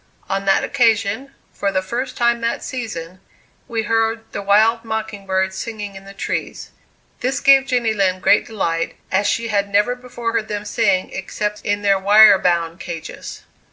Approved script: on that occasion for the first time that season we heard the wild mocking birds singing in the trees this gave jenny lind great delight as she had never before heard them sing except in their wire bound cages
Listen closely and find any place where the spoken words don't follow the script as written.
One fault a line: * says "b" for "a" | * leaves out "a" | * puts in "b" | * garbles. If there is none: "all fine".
all fine